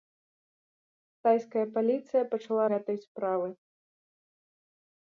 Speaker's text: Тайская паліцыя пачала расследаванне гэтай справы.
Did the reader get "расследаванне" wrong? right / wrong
wrong